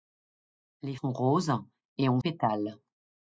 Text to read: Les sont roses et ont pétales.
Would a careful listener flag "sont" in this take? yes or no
no